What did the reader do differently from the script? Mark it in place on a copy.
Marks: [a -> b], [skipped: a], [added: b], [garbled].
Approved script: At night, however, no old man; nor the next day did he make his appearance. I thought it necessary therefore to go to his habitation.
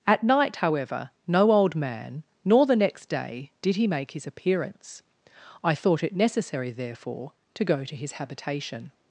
At night, however, no old man; nor the next day did he make his appearance. I thought it necessary therefore to go to his habitation.